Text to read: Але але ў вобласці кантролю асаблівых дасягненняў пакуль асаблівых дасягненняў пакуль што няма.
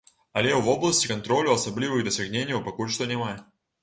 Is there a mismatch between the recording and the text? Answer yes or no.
yes